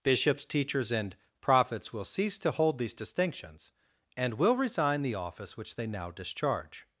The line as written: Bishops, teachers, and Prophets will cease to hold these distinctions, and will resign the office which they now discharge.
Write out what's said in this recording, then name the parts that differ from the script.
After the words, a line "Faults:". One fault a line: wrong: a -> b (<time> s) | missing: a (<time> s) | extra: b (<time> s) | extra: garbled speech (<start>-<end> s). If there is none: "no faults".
Bishops, teachers, and Prophets will cease to hold these distinctions, and will resign the office which they now discharge.
Faults:
no faults